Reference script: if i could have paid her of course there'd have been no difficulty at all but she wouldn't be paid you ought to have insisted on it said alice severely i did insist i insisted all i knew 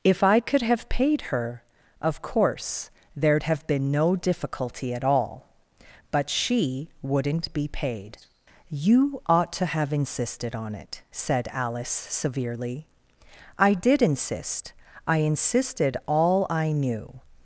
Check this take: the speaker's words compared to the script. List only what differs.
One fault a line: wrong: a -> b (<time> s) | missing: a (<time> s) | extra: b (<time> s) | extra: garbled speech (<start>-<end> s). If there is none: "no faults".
no faults